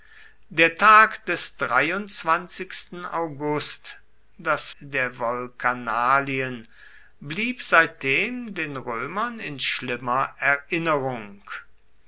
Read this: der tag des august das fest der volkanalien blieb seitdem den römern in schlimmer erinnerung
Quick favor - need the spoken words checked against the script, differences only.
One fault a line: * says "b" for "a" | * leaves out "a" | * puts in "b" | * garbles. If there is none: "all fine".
* leaves out "fest"